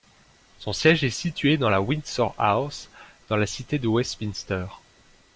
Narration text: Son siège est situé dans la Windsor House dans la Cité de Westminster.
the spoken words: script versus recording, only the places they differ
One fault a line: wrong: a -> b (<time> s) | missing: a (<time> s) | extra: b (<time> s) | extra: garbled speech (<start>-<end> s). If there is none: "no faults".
no faults